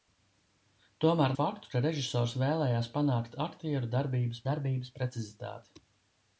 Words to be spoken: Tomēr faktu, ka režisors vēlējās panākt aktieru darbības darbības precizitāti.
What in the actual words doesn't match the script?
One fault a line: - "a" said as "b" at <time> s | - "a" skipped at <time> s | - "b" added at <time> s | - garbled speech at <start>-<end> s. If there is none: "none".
none